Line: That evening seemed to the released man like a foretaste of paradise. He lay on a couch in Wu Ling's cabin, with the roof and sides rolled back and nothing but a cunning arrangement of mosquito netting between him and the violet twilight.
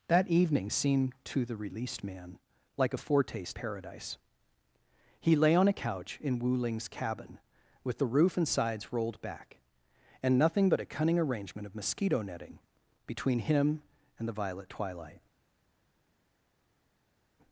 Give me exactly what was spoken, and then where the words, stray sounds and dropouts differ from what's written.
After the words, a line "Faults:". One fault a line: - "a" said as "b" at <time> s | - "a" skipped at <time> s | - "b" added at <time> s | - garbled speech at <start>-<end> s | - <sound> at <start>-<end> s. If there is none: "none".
That evening seemed to the released man like a foretaste paradise. He lay on a couch in Wu Ling's cabin, with the roof and sides rolled back and nothing but a cunning arrangement of mosquito netting between him and the violet twilight.
Faults:
- "of" skipped at 3.6 s